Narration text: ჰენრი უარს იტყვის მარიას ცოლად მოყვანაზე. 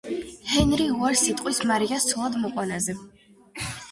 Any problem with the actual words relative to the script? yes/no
no